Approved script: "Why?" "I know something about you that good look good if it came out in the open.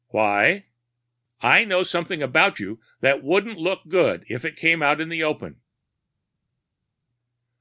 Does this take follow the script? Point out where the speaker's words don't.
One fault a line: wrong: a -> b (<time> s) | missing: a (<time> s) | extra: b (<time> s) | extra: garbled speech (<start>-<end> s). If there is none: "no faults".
wrong: good -> wouldn't (3.2 s)